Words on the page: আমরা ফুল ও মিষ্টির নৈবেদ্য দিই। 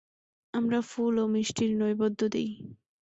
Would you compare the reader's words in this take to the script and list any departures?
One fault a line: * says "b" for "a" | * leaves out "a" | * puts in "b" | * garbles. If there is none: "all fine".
all fine